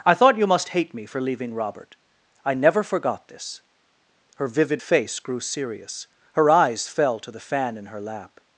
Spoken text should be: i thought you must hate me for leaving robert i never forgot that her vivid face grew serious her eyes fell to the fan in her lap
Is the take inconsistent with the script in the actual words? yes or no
yes